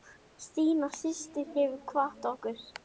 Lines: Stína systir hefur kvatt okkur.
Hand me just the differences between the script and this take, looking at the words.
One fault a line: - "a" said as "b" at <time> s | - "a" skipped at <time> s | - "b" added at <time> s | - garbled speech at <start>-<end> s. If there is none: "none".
none